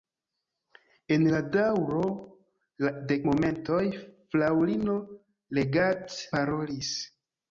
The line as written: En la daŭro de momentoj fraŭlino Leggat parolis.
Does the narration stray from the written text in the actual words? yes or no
no